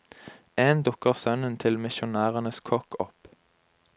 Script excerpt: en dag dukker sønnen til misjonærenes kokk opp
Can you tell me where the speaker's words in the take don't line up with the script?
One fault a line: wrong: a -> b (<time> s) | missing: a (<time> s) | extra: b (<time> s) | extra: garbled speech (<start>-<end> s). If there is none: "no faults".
missing: dag (0.8 s)